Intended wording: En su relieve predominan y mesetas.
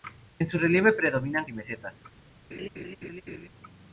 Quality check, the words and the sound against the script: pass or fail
fail